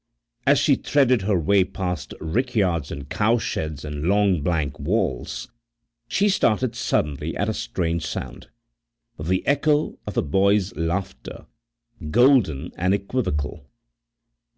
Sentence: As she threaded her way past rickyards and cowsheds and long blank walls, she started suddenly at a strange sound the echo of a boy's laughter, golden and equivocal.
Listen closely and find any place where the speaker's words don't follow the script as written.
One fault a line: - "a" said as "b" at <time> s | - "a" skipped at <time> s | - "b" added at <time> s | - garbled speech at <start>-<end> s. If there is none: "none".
none